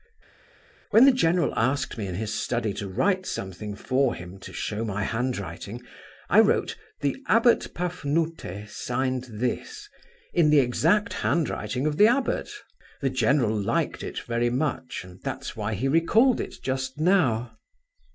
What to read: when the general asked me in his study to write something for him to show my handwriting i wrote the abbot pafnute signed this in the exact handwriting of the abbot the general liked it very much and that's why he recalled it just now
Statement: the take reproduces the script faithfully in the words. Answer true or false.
true